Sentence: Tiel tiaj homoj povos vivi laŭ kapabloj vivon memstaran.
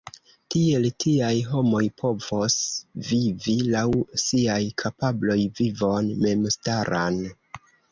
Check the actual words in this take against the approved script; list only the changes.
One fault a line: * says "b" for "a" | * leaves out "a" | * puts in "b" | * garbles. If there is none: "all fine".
* puts in "siaj"